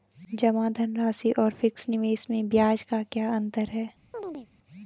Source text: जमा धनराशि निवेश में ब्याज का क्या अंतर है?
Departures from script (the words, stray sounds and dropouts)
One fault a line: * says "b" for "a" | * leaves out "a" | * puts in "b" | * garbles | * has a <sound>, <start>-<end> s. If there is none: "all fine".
* puts in "और फिक्स"
* has a chirp, 4.1-4.5 s